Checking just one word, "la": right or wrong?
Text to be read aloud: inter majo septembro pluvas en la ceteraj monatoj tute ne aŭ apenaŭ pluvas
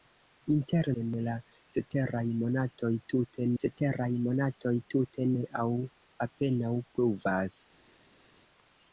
wrong